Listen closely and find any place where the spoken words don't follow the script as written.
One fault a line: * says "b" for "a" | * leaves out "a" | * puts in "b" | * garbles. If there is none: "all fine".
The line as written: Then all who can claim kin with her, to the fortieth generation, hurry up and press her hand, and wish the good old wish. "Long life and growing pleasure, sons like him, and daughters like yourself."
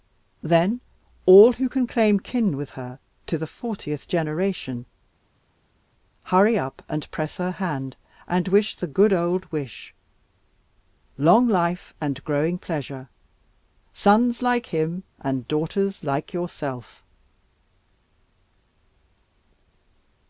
all fine